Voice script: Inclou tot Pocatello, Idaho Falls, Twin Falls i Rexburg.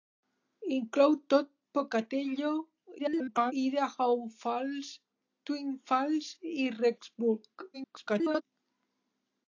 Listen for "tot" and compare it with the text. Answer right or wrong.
right